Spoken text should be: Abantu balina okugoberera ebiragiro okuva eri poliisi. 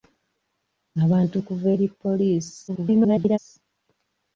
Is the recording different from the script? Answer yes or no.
yes